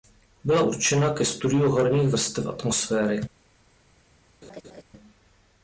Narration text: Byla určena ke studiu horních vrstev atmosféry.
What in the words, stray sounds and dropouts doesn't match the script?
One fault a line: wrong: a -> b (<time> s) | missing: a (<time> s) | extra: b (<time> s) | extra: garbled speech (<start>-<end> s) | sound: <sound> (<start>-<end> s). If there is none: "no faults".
sound: laugh (4.4-4.8 s)